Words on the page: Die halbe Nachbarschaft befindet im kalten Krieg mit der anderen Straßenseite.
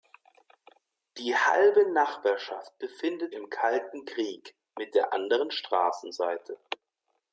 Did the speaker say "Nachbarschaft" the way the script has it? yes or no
yes